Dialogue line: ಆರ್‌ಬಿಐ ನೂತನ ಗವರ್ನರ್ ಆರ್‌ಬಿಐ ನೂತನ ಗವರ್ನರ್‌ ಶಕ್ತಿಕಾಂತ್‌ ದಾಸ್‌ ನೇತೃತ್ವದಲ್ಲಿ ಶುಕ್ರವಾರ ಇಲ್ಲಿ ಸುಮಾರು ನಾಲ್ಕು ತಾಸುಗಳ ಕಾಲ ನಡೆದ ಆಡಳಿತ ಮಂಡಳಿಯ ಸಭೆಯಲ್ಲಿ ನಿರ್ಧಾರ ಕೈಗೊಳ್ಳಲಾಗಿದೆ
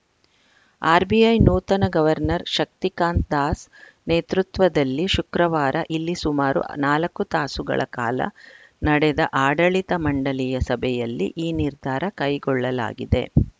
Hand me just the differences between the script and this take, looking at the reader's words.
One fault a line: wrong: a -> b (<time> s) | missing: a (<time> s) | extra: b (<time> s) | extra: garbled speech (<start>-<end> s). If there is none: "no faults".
missing: ಆರ್‌ಬಿಐ ನೂತನ ಗವರ್ನರ್ (2.5 s)
extra: ಈ (11.4 s)